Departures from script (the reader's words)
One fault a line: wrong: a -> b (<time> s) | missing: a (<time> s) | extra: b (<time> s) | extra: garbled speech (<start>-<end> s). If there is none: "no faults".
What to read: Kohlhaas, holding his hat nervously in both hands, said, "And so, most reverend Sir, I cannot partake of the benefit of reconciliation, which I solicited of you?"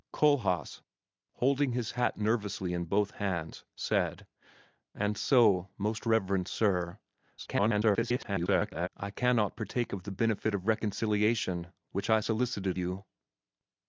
extra: garbled speech (7.4-8.9 s)
missing: of (12.8 s)